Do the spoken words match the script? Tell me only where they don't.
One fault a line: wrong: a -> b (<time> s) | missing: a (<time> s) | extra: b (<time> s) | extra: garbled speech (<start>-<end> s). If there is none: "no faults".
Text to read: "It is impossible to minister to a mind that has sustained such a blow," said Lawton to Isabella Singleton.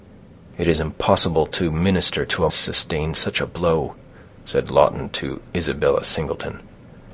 missing: mind that has (2.5 s)